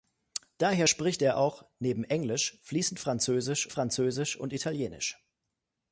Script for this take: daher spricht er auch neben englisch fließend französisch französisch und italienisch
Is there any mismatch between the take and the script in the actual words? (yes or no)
no